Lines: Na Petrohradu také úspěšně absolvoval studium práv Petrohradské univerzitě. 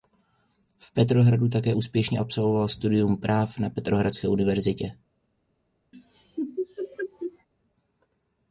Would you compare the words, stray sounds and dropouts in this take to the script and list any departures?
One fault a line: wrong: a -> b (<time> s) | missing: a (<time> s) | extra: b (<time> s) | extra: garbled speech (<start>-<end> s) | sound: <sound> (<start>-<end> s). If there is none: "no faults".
wrong: Na -> V (0.8 s)
extra: na (3.6 s)
sound: laugh (5.9-7.5 s)